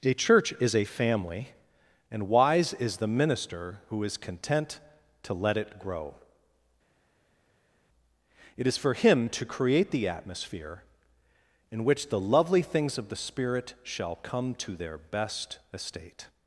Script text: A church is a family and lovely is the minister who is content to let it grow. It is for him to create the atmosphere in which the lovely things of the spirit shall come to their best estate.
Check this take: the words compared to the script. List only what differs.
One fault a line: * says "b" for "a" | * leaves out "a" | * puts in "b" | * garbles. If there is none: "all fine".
* says "wise" for "lovely"